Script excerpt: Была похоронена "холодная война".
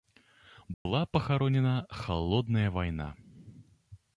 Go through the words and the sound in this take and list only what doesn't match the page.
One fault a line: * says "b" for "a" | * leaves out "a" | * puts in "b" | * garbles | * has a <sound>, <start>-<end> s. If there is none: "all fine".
* has a dropout, 0.7-0.9 s